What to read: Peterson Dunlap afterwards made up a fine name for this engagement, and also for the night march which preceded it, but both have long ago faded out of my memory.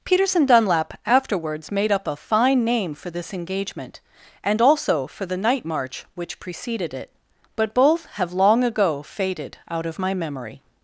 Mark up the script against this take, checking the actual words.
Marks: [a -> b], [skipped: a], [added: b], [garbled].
Peterson Dunlap afterwards made up a fine name for this engagement, and also for the night march which preceded it, but both have long ago faded out of my memory.